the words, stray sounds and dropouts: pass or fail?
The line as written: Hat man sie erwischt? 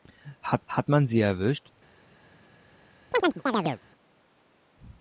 fail